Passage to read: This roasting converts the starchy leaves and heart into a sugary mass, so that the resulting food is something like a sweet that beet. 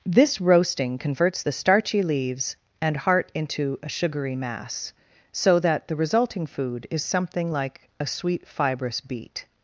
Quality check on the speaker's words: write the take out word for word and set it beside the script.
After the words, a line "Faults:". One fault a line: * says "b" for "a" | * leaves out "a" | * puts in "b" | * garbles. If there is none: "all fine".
This roasting converts the starchy leaves and heart into a sugary mass, so that the resulting food is something like a sweet fibrous beet.
Faults:
* says "fibrous" for "that"